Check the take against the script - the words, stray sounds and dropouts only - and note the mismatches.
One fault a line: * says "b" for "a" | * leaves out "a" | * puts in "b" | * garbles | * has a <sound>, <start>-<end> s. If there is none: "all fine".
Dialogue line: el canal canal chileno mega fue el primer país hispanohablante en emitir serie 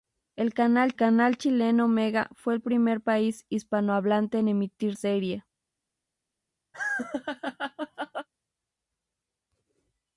* has a laugh, 6.7-8.3 s